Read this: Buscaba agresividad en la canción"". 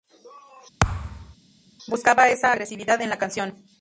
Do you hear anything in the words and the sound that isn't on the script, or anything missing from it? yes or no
yes